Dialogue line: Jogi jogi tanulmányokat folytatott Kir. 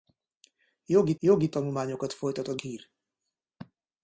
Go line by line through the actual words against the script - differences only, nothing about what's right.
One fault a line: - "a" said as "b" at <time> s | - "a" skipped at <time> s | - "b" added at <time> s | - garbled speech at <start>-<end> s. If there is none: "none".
none